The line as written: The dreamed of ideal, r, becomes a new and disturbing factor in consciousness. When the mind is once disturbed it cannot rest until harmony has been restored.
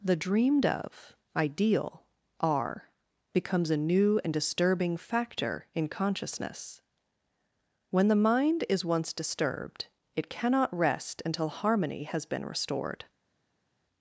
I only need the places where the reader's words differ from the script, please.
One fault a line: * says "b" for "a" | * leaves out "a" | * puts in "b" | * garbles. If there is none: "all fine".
all fine